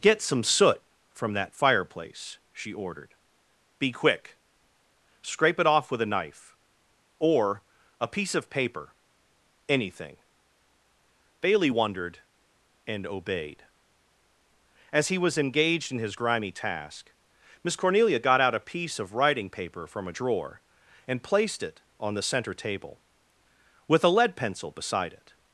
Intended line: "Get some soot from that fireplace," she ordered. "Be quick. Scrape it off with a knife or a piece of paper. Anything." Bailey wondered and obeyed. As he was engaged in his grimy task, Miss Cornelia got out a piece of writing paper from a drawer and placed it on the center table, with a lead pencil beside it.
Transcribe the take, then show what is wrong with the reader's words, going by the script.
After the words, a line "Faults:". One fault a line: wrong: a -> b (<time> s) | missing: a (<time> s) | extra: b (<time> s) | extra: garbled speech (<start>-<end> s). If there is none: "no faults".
"Get some soot from that fireplace," she ordered. "Be quick. Scrape it off with a knife or a piece of paper. Anything." Bailey wondered and obeyed. As he was engaged in his grimy task, Miss Cornelia got out a piece of writing paper from a drawer and placed it on the center table, with a lead pencil beside it.
Faults:
no faults